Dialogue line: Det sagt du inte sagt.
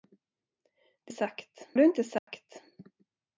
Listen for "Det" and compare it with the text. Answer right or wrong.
right